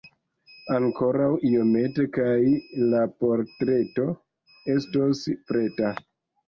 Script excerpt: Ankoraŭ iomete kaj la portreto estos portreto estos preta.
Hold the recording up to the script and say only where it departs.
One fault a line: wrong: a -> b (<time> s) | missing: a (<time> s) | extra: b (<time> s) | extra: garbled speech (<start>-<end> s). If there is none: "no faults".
missing: portreto estos (5.3 s)